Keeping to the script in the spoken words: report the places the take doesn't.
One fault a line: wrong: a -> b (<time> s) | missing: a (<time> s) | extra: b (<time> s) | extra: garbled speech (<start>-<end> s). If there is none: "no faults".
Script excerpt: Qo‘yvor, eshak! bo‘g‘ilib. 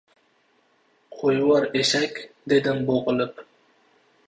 extra: dedim (2.6 s)